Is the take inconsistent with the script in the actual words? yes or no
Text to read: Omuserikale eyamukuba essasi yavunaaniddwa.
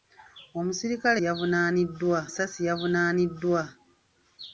yes